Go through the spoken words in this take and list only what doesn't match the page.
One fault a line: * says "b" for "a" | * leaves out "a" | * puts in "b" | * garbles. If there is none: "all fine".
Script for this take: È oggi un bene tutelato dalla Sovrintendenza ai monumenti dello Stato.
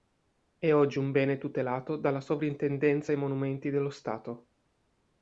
all fine